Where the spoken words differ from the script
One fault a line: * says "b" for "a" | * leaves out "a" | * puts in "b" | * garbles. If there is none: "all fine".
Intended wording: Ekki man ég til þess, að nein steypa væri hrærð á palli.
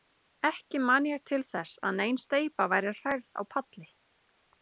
all fine